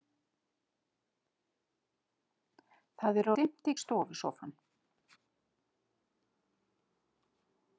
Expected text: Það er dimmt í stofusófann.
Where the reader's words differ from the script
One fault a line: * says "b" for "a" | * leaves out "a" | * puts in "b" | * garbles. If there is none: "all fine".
all fine